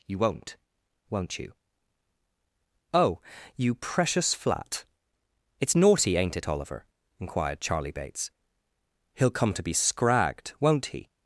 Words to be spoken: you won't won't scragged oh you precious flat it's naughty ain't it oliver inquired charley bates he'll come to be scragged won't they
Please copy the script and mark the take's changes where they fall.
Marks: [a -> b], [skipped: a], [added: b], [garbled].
you won't won't [scragged -> you] oh you precious flat it's naughty ain't it oliver inquired charley bates he'll come to be scragged won't [they -> he]